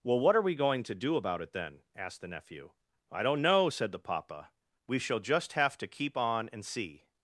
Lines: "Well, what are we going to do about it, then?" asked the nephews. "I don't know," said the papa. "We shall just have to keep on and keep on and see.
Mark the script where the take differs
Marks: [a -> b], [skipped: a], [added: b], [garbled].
"Well, what are we going to do about it, then?" asked the [nephews. -> nephew] "I don't know," said the papa. "We shall just have to keep on and [skipped: keep on and] see.